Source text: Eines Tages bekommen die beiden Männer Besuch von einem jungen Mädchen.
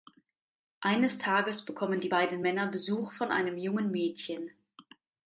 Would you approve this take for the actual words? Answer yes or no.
yes